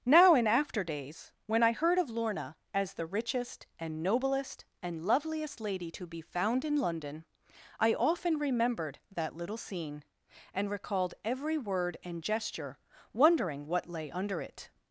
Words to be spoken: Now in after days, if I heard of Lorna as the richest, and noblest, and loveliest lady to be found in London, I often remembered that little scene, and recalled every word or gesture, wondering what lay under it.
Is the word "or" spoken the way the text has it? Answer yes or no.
no